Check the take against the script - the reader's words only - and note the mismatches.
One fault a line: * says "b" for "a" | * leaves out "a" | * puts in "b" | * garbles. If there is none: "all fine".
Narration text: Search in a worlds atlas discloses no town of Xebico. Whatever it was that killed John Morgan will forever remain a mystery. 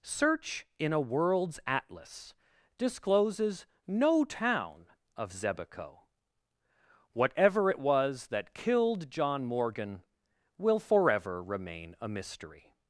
all fine